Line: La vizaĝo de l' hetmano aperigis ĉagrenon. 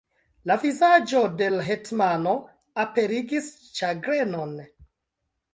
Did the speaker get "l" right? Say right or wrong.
right